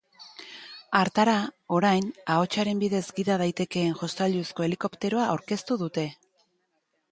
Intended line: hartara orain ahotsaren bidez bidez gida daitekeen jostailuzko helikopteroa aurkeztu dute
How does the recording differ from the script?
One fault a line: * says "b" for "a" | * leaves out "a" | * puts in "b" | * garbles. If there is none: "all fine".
* leaves out "bidez"